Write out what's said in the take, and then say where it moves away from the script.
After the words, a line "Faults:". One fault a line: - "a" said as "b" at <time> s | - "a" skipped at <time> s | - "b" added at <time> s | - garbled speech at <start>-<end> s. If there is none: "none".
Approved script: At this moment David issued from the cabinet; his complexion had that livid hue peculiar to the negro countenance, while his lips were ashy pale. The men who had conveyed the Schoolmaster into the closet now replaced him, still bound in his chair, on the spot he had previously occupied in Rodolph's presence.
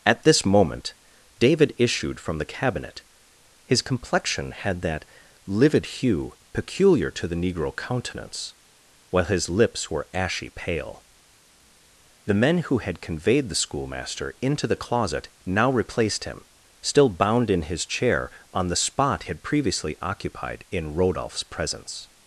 At this moment David issued from the cabinet; his complexion had that livid hue peculiar to the negro countenance, while his lips were ashy pale. The men who had conveyed the Schoolmaster into the closet now replaced him, still bound in his chair, on the spot had previously occupied in Rodolph's presence.
Faults:
- "he" skipped at 19.2 s